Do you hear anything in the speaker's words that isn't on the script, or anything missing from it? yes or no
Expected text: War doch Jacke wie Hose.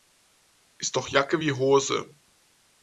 yes